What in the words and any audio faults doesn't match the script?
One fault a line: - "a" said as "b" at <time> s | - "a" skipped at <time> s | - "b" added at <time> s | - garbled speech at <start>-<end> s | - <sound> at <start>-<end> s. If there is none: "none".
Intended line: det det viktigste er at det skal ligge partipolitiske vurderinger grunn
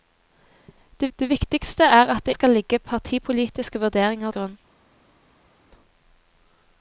none